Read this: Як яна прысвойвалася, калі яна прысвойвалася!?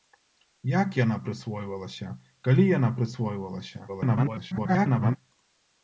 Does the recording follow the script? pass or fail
fail